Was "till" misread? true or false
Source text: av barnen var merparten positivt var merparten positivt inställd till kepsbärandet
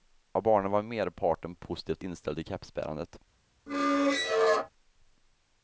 false